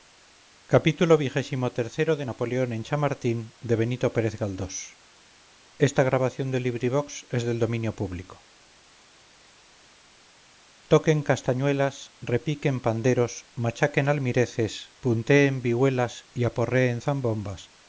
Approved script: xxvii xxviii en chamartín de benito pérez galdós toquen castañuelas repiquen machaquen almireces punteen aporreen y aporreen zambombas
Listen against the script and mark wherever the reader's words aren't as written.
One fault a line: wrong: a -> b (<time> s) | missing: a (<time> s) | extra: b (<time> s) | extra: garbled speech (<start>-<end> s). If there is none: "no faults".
extra: xxix napoleón (1.4 s)
extra: panderos (12.8 s)
wrong: aporreen -> vihuelas (15.6 s)